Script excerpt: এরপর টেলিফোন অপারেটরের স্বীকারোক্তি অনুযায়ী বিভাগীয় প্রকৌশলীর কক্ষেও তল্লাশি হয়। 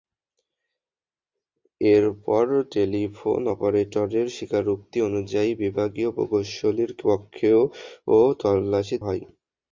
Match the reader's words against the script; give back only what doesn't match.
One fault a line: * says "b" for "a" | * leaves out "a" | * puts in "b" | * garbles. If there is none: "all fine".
all fine